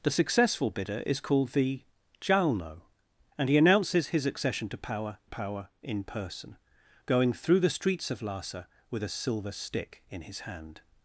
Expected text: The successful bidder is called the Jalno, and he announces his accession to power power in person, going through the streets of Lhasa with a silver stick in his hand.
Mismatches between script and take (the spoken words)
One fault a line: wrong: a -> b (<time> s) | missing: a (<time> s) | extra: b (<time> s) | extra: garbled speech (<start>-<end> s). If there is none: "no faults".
no faults